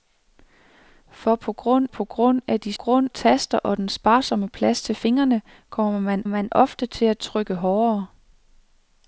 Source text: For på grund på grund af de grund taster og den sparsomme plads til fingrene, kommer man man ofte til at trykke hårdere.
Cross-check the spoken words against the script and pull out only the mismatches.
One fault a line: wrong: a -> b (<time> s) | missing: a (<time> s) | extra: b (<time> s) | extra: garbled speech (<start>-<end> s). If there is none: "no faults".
no faults